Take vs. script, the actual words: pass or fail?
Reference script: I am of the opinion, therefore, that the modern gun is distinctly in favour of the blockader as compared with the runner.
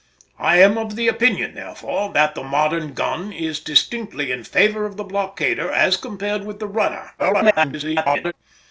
fail